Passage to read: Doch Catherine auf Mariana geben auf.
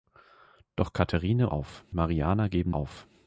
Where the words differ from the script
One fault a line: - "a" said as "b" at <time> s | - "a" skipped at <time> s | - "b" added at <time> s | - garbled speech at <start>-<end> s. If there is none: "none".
none